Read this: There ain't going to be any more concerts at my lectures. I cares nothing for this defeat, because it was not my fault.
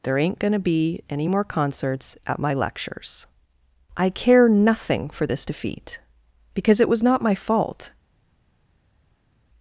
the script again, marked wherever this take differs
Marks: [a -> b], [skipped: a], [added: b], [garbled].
There ain't going to be any more concerts at my lectures. I [cares -> care] nothing for this defeat, because it was not my fault.